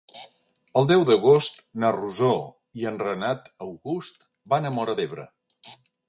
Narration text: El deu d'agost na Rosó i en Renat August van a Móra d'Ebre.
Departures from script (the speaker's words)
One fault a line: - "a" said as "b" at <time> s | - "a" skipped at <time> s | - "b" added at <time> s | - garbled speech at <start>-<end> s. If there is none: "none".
none